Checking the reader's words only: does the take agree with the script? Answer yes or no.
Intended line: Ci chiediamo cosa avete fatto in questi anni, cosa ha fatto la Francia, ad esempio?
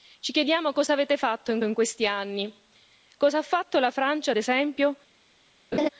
no